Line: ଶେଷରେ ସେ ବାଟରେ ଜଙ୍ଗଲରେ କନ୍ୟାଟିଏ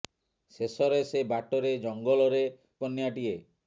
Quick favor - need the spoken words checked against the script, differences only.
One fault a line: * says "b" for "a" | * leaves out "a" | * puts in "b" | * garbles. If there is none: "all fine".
all fine